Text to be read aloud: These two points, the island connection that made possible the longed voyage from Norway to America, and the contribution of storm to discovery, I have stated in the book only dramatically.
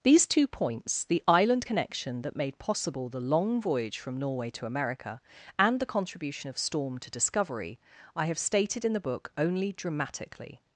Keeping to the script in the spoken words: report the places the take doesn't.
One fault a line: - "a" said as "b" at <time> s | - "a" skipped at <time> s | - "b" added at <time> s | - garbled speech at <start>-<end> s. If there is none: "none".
- "longed" said as "long" at 3.2 s